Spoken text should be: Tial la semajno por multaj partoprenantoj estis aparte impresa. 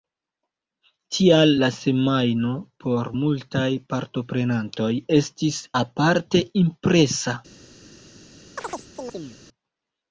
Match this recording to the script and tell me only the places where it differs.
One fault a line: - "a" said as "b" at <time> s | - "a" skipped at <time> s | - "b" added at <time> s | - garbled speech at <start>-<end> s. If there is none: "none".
none